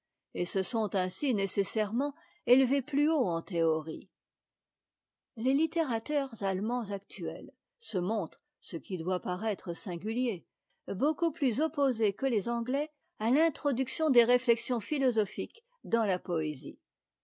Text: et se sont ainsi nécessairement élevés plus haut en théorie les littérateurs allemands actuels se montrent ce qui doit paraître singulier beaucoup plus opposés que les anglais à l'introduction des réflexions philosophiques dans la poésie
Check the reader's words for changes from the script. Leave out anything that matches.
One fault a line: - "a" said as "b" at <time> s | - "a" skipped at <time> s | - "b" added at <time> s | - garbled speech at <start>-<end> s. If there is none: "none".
none